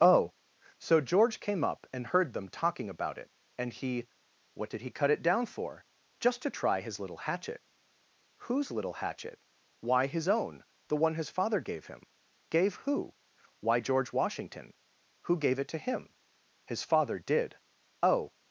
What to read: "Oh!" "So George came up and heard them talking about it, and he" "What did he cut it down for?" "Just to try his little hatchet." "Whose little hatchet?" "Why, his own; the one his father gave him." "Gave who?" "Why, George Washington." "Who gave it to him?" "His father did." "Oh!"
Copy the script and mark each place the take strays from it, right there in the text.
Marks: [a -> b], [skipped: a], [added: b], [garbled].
"Oh!" "So George came up and heard them talking about it, and he" "What did he cut it down for?" "Just to try his little hatchet." "Whose little hatchet?" "Why, his own; the one his father gave him." "Gave who?" "Why, George Washington." "Who gave it to him?" "His father did." "Oh!"